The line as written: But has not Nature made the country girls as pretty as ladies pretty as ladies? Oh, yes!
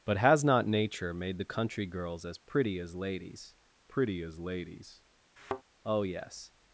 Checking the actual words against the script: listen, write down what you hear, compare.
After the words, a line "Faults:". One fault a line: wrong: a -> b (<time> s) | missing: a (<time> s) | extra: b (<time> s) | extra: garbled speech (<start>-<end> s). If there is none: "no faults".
But has not Nature made the country girls as pretty as ladies pretty as ladies? Oh, yes!
Faults:
no faults